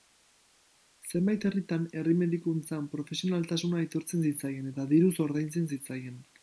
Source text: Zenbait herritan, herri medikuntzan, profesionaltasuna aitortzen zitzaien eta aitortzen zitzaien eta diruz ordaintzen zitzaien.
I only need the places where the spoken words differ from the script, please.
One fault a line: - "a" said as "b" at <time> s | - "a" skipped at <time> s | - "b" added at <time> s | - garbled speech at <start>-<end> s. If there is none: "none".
- "aitortzen zitzaien eta" skipped at 4.9 s